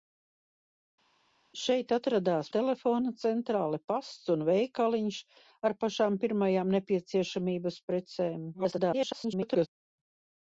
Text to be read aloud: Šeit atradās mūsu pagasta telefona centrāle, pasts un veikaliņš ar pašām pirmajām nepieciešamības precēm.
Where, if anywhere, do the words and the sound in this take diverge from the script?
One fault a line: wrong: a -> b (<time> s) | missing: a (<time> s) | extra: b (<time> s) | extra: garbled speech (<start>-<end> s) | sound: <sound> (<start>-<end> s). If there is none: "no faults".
missing: mūsu pagasta (2.5 s)
extra: garbled speech (8.5-9.7 s)